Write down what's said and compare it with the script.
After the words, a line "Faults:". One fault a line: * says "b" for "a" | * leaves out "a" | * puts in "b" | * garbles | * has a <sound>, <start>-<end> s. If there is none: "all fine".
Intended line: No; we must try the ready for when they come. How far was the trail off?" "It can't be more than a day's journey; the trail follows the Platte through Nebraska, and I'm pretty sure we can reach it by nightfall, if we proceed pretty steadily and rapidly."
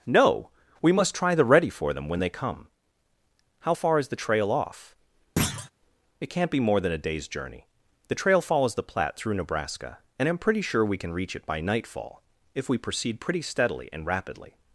No; we must try the ready for them when they come. How far is the trail off?" "It can't be more than a day's journey; the trail follows the Platte through Nebraska, and I'm pretty sure we can reach it by nightfall, if we proceed pretty steadily and rapidly."
Faults:
* puts in "them"
* says "is" for "was"
* has a thud, 5.4-5.7 s